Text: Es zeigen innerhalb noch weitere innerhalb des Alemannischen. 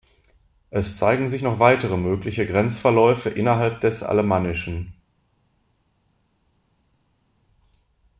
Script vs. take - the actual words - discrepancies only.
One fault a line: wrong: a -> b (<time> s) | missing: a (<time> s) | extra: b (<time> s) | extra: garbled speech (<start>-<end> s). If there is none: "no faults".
wrong: innerhalb -> sich (1.3 s)
extra: mögliche Grenzverläufe (2.0 s)